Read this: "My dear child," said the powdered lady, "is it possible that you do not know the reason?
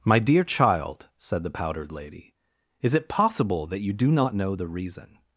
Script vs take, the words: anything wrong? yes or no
no